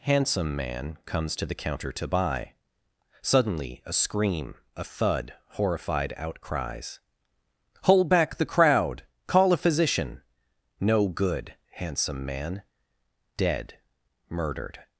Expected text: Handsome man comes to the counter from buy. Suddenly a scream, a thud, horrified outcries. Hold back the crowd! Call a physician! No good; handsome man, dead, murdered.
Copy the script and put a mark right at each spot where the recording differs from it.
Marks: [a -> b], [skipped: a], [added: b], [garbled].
Handsome man comes to the counter [from -> to] buy. Suddenly a scream, a thud, horrified outcries. Hold back the crowd! Call a physician! No good; handsome man, dead, murdered.